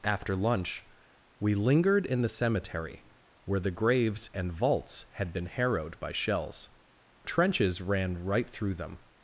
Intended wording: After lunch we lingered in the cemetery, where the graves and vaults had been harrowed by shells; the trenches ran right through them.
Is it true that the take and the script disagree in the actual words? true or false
true